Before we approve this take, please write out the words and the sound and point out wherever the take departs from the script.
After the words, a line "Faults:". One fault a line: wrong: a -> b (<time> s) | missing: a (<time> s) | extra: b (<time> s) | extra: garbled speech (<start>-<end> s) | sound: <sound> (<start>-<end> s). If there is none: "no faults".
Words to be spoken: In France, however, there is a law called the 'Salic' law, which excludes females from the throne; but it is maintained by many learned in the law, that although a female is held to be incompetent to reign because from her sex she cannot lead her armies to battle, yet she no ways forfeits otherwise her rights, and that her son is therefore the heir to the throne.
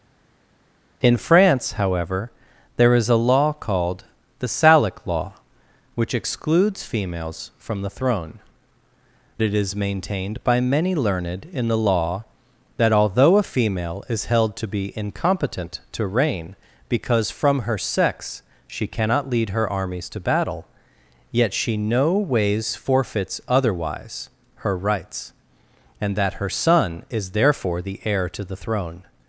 In France, however, there is a law called the 'Salic' law, which excludes females from the throne; it is maintained by many learned in the law, that although a female is held to be incompetent to reign because from her sex she cannot lead her armies to battle, yet she no ways forfeits otherwise her rights, and that her son is therefore the heir to the throne.
Faults:
missing: but (8.4 s)